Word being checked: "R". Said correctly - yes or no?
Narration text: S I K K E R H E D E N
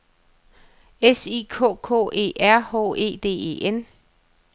yes